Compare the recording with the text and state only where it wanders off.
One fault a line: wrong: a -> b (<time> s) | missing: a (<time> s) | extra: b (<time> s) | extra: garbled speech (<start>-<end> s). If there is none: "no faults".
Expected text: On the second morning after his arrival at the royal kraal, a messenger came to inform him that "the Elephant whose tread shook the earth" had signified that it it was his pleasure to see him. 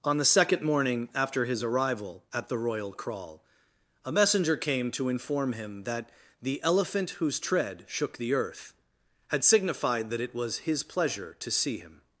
missing: it (10.4 s)